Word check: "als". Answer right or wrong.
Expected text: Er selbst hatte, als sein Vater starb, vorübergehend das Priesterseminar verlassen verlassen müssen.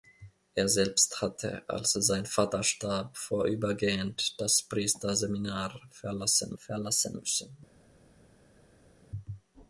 right